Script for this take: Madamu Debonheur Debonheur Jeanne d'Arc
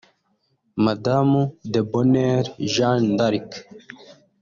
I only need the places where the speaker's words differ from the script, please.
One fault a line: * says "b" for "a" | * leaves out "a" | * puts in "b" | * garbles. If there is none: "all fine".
* leaves out "Debonheur"